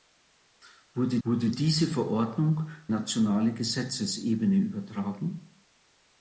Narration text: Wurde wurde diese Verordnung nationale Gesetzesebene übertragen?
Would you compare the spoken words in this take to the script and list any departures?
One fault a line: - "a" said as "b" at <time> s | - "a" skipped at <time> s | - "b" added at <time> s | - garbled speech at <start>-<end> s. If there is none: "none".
none